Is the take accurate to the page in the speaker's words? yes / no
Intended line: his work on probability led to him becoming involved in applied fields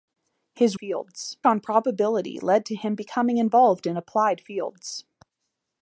no